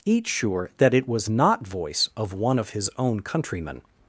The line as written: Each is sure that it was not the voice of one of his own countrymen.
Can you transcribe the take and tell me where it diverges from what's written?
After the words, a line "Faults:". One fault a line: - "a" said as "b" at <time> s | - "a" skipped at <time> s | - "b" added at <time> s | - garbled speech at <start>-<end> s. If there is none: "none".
Each sure that it was not voice of one of his own countrymen.
Faults:
- "is" skipped at 0.3 s
- "the" skipped at 1.7 s